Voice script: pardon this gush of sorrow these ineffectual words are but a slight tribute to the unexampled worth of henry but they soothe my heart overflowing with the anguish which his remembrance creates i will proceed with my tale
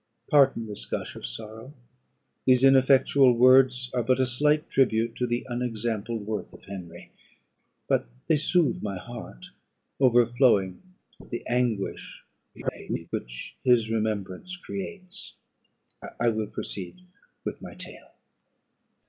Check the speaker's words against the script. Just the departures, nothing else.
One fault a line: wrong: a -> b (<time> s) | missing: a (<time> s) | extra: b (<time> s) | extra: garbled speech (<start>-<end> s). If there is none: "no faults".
extra: garbled speech (12.5-13.1 s)